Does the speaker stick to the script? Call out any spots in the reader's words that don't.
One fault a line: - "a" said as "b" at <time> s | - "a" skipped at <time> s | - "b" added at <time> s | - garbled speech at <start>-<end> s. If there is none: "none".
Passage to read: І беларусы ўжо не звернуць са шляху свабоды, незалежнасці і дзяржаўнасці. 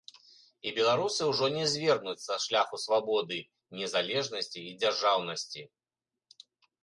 none